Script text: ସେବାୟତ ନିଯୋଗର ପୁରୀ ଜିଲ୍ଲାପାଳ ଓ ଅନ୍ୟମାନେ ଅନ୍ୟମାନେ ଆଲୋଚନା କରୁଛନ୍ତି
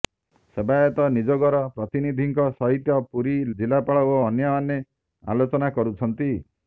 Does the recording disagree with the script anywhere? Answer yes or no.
yes